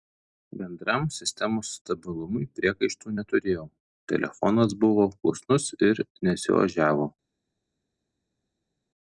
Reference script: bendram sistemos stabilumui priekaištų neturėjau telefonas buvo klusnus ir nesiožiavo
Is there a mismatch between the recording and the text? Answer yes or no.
no